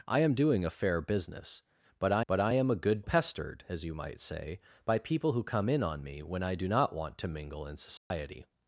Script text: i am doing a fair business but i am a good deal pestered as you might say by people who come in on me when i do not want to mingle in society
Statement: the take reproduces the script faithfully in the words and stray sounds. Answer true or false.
false